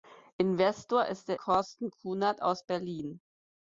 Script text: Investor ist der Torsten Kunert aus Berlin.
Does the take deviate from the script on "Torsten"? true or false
false